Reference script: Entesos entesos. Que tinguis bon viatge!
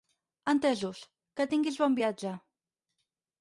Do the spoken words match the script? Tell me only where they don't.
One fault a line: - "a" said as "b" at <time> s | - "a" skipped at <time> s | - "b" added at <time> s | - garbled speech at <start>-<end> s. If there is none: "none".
- "entesos" skipped at 1.0 s